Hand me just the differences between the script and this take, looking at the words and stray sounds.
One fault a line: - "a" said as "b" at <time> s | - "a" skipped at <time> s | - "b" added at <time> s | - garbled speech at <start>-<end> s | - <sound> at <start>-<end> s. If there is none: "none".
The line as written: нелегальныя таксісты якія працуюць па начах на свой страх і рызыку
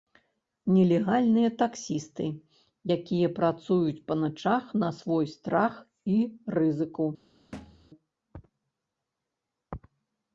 - thud at 7.5-7.9 s